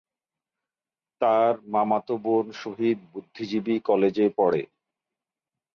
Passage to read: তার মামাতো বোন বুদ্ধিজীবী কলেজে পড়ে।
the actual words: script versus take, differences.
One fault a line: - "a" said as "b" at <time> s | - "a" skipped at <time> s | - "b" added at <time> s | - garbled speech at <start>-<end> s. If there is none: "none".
- "শহীদ" added at 2.5 s